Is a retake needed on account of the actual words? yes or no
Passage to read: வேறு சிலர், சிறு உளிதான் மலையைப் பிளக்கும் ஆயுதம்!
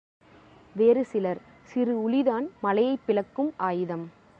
no